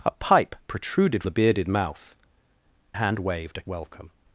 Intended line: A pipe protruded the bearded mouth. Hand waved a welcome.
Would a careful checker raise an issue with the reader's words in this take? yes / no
no